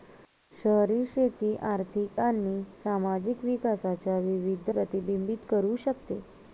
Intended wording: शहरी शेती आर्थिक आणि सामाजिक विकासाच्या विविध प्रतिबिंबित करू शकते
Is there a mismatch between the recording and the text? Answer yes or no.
no